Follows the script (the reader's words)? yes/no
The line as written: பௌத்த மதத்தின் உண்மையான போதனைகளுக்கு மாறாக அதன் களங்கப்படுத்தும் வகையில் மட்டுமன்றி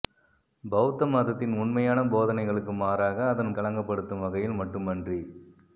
yes